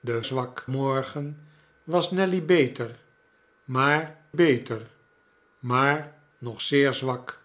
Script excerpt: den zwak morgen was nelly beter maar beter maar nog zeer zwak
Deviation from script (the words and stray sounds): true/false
false